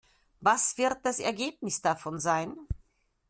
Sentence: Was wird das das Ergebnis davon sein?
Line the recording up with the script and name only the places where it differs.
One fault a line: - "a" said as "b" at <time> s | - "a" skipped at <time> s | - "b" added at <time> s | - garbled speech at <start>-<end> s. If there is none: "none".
- "das" skipped at 1.2 s